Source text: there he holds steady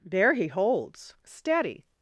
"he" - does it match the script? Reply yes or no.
yes